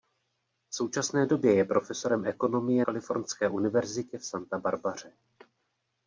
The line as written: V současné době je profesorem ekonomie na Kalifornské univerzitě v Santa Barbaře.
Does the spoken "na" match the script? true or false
false